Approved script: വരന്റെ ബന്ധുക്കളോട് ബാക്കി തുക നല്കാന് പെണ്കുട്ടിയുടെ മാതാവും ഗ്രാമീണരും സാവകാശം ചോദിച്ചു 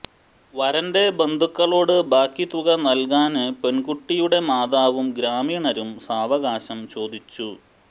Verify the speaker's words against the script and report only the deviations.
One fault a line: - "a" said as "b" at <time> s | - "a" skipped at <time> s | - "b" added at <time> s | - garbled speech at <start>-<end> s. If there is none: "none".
none